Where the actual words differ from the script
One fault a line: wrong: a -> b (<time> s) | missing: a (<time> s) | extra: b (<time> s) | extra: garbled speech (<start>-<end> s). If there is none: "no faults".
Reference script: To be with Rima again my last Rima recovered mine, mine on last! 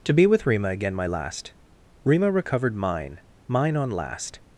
no faults